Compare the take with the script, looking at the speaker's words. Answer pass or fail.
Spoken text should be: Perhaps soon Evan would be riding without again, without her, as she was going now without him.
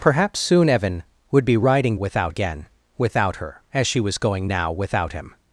pass